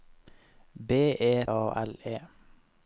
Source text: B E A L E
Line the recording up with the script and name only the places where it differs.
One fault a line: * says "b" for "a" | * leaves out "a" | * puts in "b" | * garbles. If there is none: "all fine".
all fine